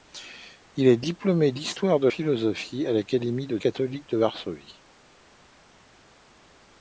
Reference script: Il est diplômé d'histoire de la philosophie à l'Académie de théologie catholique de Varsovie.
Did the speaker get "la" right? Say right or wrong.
wrong